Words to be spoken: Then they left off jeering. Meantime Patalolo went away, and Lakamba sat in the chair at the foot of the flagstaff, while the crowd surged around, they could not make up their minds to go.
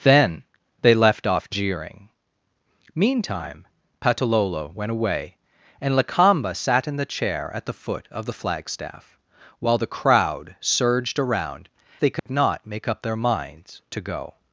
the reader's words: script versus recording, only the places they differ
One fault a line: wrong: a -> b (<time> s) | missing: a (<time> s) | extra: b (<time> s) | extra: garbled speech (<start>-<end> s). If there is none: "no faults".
no faults